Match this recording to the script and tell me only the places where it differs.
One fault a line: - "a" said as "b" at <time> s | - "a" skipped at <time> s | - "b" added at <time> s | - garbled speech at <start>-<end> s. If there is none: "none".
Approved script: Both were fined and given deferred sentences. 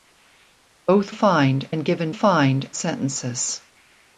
- "were" skipped at 1.1 s
- "deferred" said as "fined" at 2.1 s